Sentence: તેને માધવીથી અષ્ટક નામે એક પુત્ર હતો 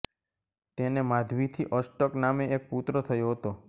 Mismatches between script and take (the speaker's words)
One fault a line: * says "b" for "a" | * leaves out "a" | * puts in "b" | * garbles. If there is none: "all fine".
* puts in "થયો"